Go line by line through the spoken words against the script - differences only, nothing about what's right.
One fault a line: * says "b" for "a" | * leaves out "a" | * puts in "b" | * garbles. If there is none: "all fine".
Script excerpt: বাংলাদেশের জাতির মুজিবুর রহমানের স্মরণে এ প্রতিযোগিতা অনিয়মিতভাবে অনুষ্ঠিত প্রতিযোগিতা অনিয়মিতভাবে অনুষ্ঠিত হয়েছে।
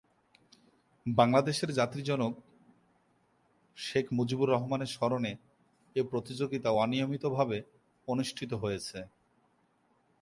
* puts in "জনক শেখ"
* leaves out "প্রতিযোগিতা অনিয়মিতভাবে অনুষ্ঠিত"